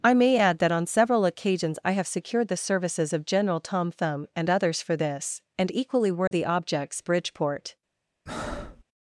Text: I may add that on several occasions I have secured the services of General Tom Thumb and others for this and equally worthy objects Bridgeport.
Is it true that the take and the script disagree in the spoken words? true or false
false